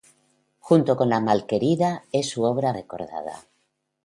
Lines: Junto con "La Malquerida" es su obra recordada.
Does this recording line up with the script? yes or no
yes